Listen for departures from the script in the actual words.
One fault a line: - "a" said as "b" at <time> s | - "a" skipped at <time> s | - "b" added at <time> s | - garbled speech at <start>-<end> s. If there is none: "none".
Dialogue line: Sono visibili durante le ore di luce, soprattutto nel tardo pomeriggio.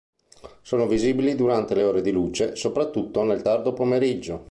none